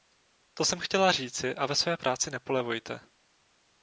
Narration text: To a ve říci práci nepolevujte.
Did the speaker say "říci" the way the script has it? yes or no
no